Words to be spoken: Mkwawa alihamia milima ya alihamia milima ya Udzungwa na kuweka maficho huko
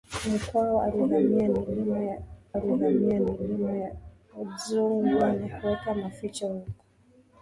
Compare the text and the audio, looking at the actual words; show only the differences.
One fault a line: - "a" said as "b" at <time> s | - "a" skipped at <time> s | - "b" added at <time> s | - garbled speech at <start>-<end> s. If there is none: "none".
none